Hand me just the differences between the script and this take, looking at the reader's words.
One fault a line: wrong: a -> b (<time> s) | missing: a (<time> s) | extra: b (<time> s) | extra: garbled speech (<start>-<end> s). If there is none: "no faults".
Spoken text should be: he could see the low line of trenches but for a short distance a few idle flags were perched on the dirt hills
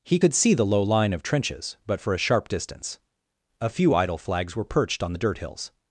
wrong: short -> sharp (2.2 s)